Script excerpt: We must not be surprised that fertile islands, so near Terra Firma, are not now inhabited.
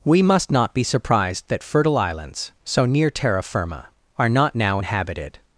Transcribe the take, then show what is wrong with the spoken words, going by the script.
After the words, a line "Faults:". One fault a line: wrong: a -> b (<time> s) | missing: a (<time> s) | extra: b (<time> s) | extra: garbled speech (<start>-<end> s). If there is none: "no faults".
We must not be surprised that fertile islands, so near Terra Firma, are not now inhabited.
Faults:
no faults